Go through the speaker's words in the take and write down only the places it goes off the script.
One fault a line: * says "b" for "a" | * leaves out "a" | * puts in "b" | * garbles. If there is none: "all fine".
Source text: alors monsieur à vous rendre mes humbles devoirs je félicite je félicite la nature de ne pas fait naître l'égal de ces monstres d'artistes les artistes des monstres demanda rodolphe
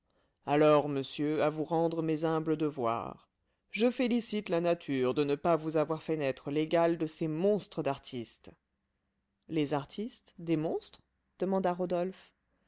* leaves out "je félicite"
* puts in "vous avoir"